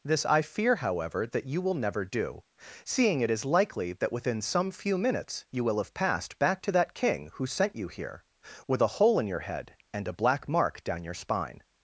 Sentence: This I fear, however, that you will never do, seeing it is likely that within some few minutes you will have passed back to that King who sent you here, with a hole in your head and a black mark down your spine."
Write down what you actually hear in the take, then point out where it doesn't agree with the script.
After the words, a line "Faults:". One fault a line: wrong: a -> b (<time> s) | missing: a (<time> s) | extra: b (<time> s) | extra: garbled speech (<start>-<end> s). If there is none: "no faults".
This I fear, however, that you will never do, seeing it is likely that within some few minutes you will have passed back to that King who sent you here, with a hole in your head and a black mark down your spine."
Faults:
no faults